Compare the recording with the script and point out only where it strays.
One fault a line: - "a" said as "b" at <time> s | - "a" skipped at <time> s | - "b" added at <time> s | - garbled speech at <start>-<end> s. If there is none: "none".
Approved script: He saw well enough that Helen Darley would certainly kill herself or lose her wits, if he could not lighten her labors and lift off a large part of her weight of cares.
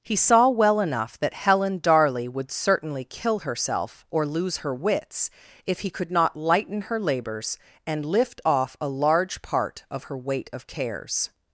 none